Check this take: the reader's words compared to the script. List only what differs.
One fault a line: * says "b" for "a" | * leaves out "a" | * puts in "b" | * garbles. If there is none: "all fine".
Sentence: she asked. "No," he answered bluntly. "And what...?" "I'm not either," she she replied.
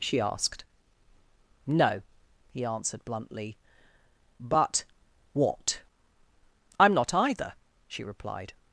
* says "But" for "And"
* leaves out "she"